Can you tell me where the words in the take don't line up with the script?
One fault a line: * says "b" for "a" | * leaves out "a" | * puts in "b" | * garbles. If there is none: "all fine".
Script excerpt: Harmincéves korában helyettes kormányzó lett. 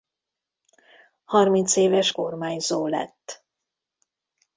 * leaves out "korában helyettes"